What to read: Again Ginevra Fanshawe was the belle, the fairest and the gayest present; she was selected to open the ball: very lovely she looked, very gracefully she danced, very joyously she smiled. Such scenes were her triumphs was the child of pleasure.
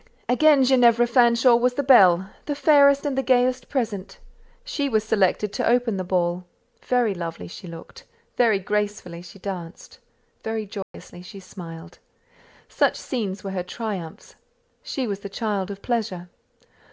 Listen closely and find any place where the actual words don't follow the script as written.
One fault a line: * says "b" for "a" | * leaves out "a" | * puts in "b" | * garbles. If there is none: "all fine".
* puts in "she"